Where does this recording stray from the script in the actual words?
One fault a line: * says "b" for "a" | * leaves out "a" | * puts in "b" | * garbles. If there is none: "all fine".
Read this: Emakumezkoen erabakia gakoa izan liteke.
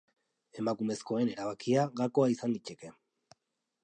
all fine